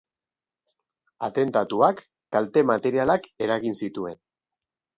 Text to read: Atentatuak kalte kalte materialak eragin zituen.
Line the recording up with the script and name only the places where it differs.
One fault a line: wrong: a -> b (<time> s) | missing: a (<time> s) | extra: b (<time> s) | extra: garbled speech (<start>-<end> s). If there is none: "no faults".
missing: kalte (2.7 s)